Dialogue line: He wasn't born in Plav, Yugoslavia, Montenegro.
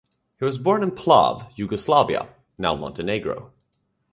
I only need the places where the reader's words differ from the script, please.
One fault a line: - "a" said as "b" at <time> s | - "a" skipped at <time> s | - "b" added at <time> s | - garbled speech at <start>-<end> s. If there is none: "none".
- "wasn't" said as "was" at 0.5 s
- "now" added at 2.6 s